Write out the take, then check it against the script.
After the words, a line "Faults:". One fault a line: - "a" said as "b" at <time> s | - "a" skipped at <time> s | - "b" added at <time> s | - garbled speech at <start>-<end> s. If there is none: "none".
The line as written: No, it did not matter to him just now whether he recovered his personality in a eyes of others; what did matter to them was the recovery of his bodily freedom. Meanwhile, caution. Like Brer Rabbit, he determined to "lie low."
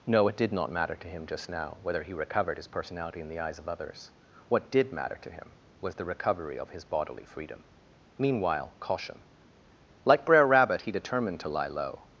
No, it did not matter to him just now whether he recovered his personality in the eyes of others; what did matter to him was the recovery of his bodily freedom. Meanwhile, caution. Like Brer Rabbit, he determined to "lie low."
Faults:
- "a" said as "the" at 3.3 s
- "them" said as "him" at 5.3 s